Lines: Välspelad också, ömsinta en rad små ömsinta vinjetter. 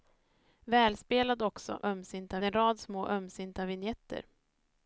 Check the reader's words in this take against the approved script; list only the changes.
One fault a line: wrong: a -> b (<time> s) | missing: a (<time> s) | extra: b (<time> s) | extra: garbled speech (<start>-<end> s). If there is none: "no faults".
no faults